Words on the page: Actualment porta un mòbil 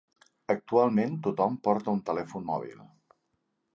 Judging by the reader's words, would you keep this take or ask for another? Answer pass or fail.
fail